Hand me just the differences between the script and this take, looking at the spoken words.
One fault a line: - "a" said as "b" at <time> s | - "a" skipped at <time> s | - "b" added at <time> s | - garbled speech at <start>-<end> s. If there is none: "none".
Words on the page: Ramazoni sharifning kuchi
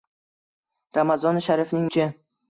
none